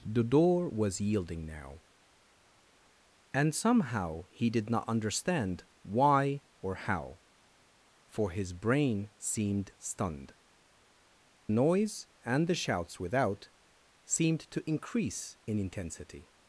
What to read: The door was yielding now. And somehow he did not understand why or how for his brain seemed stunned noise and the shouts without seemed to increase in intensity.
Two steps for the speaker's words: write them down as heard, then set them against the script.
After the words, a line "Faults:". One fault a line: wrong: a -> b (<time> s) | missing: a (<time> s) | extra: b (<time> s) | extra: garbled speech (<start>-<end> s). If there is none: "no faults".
The door was yielding now. And somehow he did not understand why or how for his brain seemed stunned noise and the shouts without seemed to increase in intensity.
Faults:
no faults